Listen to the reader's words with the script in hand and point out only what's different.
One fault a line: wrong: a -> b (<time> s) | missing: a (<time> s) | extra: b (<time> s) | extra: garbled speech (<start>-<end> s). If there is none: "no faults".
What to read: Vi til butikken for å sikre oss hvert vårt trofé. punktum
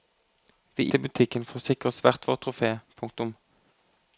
no faults